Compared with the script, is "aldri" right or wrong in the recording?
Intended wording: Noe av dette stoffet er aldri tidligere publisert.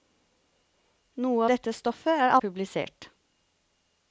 wrong